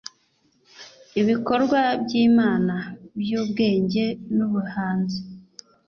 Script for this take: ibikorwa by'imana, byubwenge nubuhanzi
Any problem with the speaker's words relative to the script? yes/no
no